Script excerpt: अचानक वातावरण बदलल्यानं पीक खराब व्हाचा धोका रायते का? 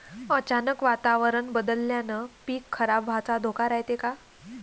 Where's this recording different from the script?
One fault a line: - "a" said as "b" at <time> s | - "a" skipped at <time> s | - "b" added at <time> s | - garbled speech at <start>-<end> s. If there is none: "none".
none